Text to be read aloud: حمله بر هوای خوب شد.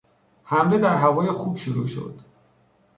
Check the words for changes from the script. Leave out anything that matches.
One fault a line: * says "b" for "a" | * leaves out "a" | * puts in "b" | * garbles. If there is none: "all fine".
* says "در" for "بر"
* puts in "شروع"